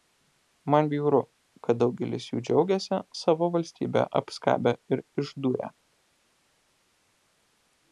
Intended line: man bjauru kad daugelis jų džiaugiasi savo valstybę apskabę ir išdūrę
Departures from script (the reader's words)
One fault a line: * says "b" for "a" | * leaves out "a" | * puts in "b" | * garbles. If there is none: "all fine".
all fine